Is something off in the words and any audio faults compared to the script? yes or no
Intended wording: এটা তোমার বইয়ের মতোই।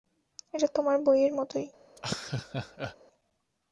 yes